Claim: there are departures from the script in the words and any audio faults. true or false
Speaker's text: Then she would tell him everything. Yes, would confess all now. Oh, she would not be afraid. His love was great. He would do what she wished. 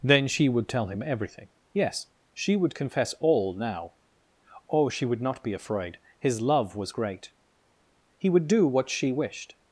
true